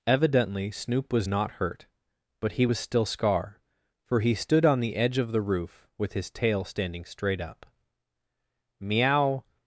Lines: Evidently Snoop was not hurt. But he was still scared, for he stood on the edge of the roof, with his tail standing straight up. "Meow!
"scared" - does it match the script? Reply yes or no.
no